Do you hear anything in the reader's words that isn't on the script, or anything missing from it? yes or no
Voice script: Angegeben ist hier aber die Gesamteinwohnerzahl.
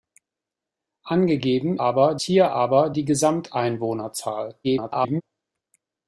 yes